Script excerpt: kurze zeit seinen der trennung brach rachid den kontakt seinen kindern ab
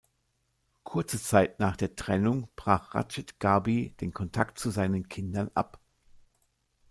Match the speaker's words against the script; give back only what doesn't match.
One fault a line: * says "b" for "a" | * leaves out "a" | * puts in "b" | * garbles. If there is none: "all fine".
* says "nach" for "seinen"
* puts in "gharbi"
* puts in "zu"